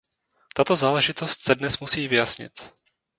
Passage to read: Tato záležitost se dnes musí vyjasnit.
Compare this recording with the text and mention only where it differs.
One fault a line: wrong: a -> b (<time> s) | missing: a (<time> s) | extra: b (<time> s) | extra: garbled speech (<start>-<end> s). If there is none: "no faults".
no faults